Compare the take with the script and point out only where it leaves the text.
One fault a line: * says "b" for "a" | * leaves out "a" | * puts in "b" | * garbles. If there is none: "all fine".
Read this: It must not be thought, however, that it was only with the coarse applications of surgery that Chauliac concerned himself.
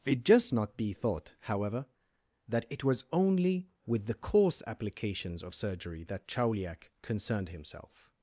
* says "just" for "must"